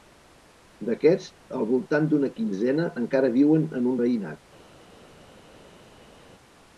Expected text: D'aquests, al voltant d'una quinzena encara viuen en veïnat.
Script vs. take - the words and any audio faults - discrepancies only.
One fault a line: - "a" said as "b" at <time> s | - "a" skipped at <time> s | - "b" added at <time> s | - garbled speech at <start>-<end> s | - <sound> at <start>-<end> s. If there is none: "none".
none